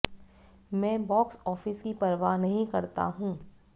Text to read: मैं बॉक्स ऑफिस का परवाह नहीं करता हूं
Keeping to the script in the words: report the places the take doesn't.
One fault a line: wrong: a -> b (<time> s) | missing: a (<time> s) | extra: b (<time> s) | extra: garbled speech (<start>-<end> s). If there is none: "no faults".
wrong: का -> की (1.8 s)